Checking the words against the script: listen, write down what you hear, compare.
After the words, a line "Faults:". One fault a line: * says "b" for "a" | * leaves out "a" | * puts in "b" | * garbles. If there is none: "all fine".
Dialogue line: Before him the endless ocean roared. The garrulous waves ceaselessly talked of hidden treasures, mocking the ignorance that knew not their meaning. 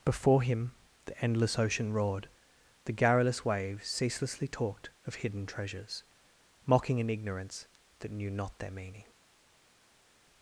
Before him the endless ocean roared. The garrulous waves ceaselessly talked of hidden treasures, mocking an ignorance that knew not their meaning.
Faults:
* says "an" for "the"